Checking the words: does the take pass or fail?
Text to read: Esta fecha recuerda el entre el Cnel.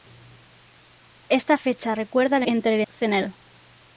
pass